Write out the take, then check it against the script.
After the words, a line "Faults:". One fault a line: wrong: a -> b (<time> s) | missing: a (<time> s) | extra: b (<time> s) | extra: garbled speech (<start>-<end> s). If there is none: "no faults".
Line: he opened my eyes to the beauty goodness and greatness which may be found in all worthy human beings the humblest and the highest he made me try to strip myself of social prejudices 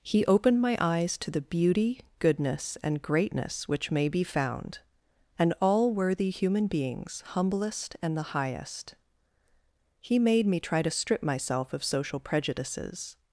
he opened my eyes to the beauty goodness and greatness which may be found and all worthy human beings humblest and the highest he made me try to strip myself of social prejudices
Faults:
wrong: in -> and (5.4 s)
missing: the (7.2 s)